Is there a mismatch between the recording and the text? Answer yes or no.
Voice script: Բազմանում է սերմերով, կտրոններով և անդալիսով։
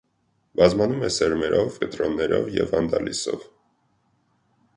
no